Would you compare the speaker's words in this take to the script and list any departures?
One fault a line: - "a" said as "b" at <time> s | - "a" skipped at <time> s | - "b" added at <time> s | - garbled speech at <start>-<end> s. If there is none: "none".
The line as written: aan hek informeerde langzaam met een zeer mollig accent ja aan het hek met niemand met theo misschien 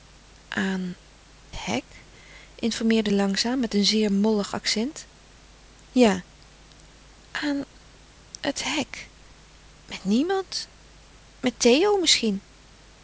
none